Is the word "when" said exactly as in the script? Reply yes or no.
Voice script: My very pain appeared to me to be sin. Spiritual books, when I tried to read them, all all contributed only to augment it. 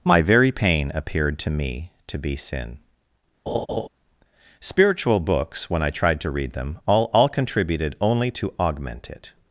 yes